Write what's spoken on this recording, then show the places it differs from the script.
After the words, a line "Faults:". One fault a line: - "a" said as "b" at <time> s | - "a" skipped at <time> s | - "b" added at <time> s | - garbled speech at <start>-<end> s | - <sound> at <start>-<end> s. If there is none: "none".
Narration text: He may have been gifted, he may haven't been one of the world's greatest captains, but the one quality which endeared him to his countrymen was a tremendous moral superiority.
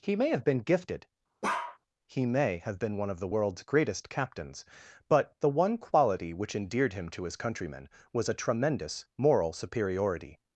He may have been gifted, he may have been one of the world's greatest captains, but the one quality which endeared him to his countrymen was a tremendous moral superiority.
Faults:
- bark at 1.4-1.8 s
- "haven't" said as "have" at 2.6 s